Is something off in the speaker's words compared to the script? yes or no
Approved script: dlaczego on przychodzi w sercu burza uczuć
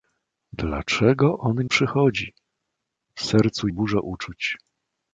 no